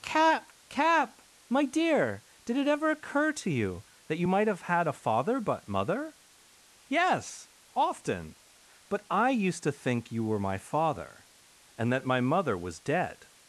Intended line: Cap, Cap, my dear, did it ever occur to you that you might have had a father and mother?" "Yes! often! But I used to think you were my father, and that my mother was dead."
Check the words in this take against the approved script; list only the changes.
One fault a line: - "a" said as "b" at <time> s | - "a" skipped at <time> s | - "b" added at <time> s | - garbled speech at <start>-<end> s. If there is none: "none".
- "and" said as "but" at 5.4 s